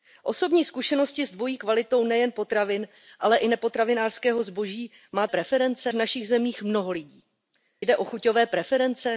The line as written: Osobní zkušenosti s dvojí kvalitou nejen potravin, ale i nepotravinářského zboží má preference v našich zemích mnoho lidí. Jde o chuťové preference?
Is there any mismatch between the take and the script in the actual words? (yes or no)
no